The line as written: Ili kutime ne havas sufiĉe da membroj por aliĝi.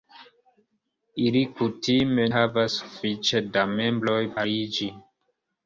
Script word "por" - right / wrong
wrong